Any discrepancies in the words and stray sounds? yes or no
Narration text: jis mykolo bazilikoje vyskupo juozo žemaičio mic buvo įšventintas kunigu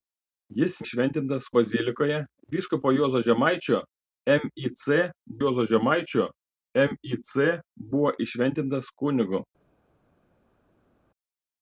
yes